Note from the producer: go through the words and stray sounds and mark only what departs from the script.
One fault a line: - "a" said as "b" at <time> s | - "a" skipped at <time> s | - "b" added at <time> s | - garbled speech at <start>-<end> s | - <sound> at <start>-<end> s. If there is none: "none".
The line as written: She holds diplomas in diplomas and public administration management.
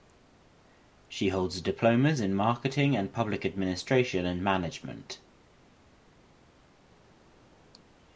- "diplomas" said as "marketing" at 2.3 s
- "and" added at 4.2 s